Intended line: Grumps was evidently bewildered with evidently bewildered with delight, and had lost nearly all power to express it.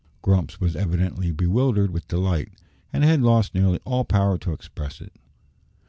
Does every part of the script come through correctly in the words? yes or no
no